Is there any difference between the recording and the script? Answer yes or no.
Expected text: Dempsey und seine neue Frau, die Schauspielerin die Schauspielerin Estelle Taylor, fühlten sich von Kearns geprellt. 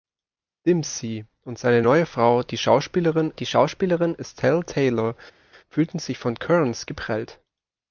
no